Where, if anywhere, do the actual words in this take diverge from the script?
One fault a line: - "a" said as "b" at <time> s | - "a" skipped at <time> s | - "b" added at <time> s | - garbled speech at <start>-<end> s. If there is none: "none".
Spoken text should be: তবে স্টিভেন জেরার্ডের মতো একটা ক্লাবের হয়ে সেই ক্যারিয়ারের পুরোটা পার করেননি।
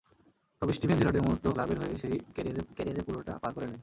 - "একটা" skipped at 1.5 s
- "ক্যারিয়ারের" added at 2.7 s